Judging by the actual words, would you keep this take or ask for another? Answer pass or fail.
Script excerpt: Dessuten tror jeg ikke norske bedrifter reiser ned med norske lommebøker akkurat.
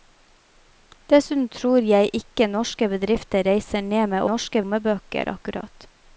pass